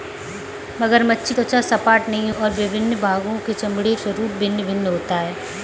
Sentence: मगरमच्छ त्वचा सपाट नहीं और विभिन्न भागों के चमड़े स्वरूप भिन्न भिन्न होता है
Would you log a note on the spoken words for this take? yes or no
no